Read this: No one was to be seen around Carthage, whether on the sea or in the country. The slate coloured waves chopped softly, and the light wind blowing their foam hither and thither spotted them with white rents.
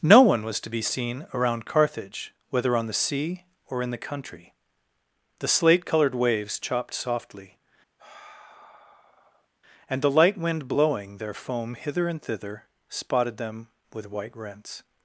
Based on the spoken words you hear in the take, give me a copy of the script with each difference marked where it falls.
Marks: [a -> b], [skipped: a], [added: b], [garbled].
No one was to be seen around Carthage, whether on the sea or in the country. The slate coloured waves chopped softly, and the light wind blowing their foam hither and thither spotted them with white rents.